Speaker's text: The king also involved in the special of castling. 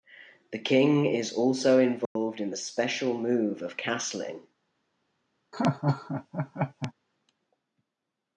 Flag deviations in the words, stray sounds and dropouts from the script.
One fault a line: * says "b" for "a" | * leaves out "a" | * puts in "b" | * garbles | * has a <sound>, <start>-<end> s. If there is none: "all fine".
* puts in "is"
* has a dropout, 2.1-2.2 s
* puts in "move"
* has a laugh, 5.5-6.9 s